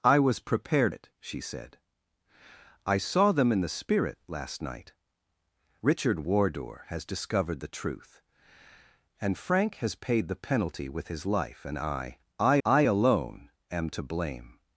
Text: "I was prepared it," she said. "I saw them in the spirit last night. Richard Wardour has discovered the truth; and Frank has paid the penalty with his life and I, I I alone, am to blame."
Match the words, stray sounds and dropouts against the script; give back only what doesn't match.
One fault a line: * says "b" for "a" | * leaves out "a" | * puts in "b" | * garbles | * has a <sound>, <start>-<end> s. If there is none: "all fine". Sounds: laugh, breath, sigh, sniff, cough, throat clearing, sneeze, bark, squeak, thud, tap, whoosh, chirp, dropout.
all fine